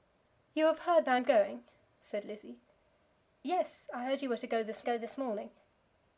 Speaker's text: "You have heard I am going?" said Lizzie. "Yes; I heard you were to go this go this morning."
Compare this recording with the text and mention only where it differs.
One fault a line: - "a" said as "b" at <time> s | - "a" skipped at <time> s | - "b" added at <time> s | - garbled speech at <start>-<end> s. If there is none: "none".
none